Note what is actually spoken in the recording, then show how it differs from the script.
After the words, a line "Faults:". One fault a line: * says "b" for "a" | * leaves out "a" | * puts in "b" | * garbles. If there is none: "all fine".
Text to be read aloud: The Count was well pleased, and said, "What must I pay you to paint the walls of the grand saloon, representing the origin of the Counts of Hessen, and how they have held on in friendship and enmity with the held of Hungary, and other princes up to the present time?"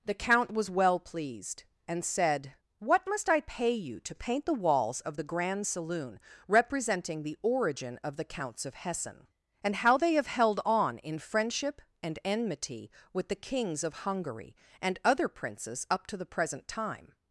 The Count was well pleased, and said, "What must I pay you to paint the walls of the grand saloon, representing the origin of the Counts of Hessen, and how they have held on in friendship and enmity with the kings of Hungary, and other princes up to the present time?"
Faults:
* says "kings" for "held"